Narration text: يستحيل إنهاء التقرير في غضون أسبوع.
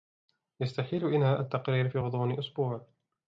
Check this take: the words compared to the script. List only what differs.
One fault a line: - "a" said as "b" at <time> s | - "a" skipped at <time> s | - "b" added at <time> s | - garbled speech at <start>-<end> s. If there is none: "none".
none